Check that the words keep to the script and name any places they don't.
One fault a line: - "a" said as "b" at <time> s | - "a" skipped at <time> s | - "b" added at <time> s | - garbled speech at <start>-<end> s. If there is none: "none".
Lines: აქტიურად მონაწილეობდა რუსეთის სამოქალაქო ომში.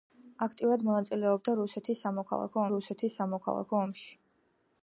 - "რუსეთის სამოქალაქო" added at 2.7 s